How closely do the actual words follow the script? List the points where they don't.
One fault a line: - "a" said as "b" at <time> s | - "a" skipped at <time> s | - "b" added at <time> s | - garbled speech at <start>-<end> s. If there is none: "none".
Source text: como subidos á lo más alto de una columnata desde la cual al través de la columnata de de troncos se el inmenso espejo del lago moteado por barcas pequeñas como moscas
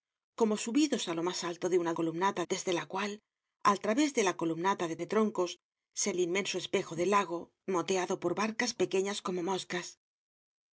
none